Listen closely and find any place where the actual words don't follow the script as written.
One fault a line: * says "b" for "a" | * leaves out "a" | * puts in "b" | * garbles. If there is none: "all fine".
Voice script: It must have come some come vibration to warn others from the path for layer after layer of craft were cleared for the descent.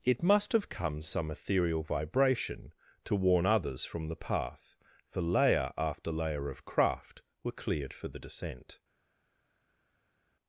* says "ethereal" for "come"